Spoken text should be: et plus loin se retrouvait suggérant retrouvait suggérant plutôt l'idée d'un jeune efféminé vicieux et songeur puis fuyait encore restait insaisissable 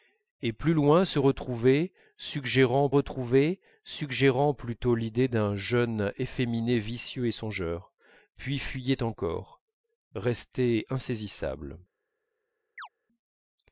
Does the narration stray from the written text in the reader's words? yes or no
no